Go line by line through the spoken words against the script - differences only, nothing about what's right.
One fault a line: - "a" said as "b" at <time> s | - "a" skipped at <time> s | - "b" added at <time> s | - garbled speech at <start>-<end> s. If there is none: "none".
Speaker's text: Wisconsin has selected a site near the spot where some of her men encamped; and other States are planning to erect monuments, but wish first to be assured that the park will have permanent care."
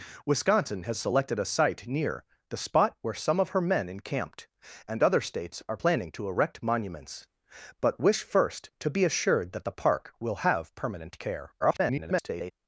- garbled speech at 11.6-12.5 s